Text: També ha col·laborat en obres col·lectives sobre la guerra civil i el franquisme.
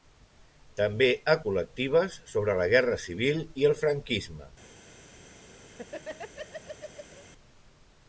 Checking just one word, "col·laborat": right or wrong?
wrong